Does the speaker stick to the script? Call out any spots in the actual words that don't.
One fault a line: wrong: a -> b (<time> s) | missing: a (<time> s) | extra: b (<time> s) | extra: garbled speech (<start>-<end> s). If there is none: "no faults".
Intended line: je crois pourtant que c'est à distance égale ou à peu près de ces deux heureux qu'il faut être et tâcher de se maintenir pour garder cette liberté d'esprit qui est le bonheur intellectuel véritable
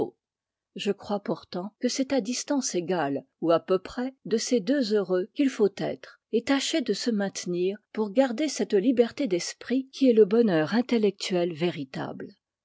no faults